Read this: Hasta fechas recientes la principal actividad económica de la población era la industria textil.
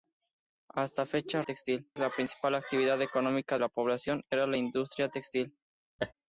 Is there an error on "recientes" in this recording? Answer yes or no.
yes